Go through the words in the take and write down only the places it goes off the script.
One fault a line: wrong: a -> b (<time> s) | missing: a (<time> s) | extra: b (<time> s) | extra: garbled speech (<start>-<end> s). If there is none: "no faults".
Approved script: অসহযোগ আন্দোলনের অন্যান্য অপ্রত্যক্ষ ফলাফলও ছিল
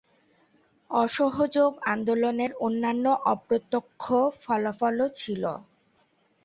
no faults